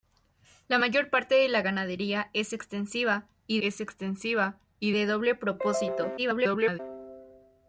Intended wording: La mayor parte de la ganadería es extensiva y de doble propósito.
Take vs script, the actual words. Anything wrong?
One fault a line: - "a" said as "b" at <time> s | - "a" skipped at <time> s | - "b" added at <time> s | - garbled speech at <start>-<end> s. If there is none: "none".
- "es extensiva y" added at 3.6 s
- garbled speech at 6.2-6.8 s